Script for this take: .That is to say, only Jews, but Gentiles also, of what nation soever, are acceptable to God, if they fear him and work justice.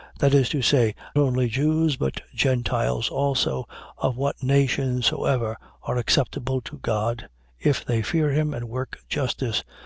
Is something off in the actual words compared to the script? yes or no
no